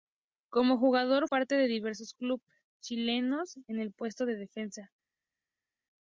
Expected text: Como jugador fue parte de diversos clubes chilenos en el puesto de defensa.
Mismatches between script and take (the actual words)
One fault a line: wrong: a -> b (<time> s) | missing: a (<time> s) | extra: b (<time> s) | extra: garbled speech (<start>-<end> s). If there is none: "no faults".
missing: fue (1.3 s)